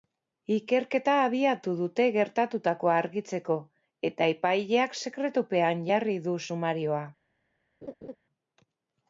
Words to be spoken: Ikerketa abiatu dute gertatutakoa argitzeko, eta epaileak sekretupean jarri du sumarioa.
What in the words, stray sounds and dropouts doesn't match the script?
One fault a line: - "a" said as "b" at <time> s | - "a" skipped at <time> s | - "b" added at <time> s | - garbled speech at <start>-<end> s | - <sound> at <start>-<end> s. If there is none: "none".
- laugh at 7.8-8.2 s